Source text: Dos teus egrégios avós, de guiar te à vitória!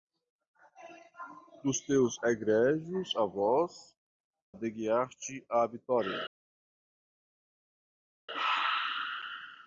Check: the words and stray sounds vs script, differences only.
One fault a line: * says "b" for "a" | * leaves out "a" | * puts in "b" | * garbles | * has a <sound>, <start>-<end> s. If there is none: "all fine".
all fine